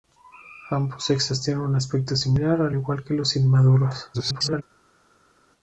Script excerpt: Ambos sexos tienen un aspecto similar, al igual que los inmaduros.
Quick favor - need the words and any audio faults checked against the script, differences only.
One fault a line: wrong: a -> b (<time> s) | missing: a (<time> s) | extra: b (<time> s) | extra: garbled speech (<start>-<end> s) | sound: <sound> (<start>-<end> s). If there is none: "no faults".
extra: garbled speech (4.1-4.6 s)